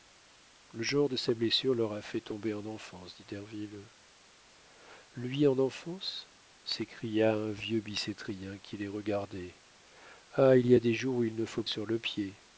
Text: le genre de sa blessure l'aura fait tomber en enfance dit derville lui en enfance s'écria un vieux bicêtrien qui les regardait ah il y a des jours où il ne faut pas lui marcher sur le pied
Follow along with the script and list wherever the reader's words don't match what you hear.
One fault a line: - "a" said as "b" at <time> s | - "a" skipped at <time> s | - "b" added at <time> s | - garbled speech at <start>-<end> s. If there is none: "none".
- "pas lui marcher" skipped at 11.6 s